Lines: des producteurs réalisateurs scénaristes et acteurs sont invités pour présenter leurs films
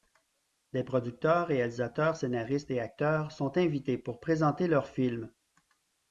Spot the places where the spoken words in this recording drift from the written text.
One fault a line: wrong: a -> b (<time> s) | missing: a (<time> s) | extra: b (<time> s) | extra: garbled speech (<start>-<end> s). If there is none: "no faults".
no faults